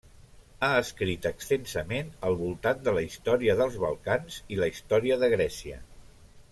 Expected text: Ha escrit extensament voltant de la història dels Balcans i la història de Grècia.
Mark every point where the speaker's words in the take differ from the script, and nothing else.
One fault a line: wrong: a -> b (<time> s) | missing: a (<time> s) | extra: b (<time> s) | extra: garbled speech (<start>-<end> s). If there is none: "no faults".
extra: al (2.3 s)